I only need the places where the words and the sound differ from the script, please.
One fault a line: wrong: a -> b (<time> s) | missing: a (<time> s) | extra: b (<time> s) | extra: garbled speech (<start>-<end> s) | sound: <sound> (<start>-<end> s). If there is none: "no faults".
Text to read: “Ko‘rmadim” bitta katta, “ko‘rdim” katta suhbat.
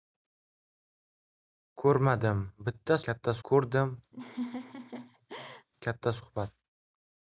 sound: laugh (4.1-5.7 s)